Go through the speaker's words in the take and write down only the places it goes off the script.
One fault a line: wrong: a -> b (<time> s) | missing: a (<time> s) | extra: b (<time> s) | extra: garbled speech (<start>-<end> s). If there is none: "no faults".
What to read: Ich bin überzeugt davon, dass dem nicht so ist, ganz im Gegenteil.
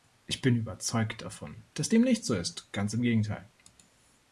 no faults